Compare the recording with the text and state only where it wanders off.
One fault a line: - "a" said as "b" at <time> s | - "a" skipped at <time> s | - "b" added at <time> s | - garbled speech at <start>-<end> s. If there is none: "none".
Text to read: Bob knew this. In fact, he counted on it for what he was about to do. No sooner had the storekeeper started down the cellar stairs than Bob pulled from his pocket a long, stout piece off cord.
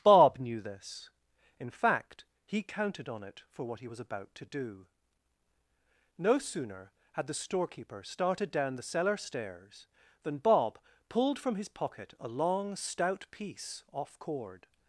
none